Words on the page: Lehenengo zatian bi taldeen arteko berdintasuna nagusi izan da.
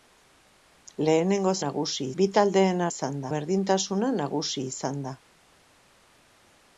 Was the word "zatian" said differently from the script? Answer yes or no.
yes